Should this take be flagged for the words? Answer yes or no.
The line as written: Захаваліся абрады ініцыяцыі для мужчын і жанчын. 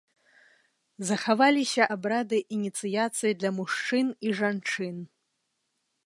no